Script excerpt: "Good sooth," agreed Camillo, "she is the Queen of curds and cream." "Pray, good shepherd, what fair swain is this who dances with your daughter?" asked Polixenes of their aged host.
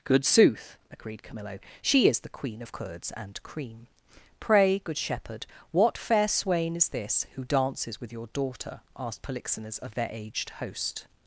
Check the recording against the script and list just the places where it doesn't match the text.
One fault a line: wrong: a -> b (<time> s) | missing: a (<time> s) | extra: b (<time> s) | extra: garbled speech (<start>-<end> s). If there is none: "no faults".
no faults